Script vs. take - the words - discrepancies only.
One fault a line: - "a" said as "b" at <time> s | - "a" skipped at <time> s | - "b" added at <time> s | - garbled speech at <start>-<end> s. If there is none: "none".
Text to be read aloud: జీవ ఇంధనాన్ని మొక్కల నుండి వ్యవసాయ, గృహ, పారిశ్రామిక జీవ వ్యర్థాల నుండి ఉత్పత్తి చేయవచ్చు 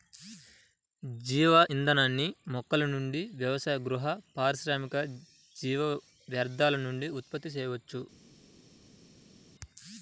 none